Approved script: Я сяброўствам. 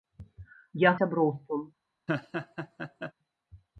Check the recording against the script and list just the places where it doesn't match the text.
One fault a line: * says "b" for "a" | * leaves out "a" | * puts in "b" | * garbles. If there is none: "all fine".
all fine